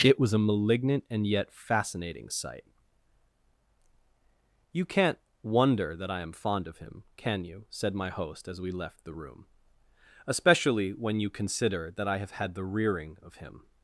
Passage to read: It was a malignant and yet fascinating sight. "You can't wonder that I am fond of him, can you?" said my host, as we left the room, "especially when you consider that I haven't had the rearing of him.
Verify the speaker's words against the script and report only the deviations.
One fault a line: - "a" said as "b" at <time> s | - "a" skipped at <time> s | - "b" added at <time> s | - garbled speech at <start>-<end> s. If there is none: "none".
- "haven't" said as "have" at 12.2 s